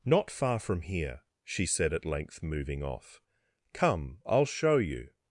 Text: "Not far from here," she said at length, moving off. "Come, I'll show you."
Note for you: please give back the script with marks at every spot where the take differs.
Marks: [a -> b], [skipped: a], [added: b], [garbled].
"Not far from here," she said at length, moving off. "Come, I'll show you."